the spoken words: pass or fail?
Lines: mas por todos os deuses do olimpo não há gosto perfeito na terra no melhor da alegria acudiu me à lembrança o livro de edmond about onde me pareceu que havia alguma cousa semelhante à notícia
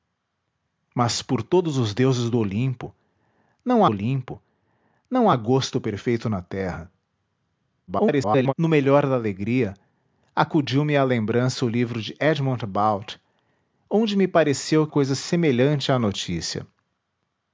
fail